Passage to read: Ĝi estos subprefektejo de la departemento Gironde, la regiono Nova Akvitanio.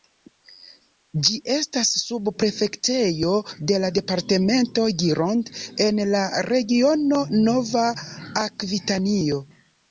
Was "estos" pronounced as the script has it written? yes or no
no